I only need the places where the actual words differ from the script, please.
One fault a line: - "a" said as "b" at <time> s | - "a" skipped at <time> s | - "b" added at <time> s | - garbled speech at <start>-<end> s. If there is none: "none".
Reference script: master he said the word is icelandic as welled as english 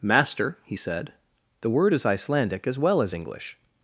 - "welled" said as "well" at 2.8 s